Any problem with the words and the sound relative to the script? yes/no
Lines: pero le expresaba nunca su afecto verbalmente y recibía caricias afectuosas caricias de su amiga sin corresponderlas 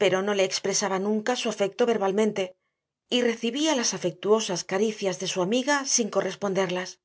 yes